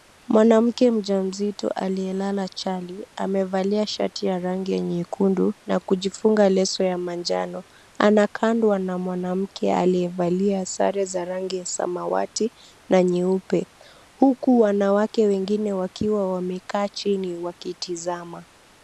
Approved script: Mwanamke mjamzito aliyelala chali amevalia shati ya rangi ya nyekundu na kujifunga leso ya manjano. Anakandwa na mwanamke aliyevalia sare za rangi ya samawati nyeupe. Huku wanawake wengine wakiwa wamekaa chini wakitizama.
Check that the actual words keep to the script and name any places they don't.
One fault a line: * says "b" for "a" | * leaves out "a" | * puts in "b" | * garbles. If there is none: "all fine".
* puts in "na"